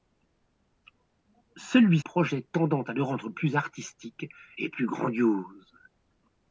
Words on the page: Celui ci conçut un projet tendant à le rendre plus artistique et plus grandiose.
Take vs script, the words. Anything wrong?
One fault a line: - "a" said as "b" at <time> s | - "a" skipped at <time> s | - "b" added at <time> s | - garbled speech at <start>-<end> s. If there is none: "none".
- "ci conçut un" skipped at 2.0 s